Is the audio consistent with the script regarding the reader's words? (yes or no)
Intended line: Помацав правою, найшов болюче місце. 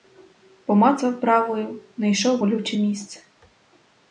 yes